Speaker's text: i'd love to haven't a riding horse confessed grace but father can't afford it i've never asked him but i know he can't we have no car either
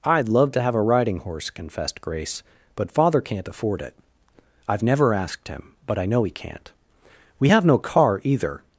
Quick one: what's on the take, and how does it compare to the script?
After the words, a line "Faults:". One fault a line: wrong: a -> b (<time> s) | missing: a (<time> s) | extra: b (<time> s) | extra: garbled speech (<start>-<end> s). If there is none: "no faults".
i'd love to have a riding horse confessed grace but father can't afford it i've never asked him but i know he can't we have no car either
Faults:
wrong: haven't -> have (0.6 s)